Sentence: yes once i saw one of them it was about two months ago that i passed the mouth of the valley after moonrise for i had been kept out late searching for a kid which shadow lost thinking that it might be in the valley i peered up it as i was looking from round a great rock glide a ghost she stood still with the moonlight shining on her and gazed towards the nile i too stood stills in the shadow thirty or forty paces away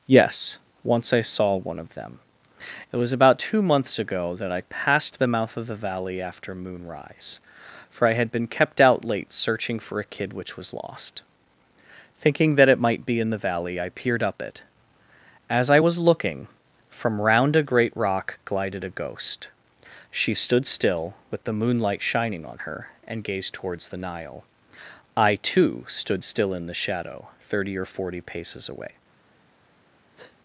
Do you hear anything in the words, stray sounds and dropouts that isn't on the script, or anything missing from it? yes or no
yes